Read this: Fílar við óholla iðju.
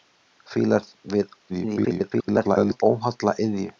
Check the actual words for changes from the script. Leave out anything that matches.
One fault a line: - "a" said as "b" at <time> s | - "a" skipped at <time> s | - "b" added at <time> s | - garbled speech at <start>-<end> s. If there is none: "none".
- garbled speech at 1.5-2.8 s